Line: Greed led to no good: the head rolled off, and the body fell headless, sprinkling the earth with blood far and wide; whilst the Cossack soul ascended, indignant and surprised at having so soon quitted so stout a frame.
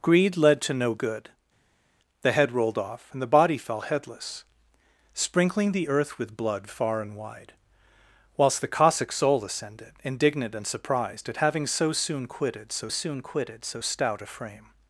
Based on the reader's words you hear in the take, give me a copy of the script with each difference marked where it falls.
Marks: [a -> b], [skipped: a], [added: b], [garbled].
Greed led to no good: the head rolled off, and the body fell headless, sprinkling the earth with blood far and wide; whilst the Cossack soul ascended, indignant and surprised at having so soon quitted so [added: soon quitted so] stout a frame.